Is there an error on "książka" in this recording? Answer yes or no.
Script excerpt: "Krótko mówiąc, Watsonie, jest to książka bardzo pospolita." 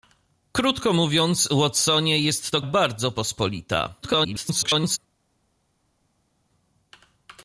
yes